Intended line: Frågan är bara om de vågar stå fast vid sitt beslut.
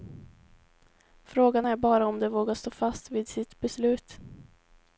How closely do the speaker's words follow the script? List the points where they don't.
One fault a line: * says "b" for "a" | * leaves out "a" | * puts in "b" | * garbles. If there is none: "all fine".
all fine